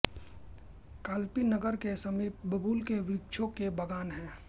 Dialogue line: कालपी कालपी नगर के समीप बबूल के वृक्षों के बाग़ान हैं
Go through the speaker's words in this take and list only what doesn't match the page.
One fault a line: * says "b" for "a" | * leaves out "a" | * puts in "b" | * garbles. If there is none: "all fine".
* leaves out "कालपी"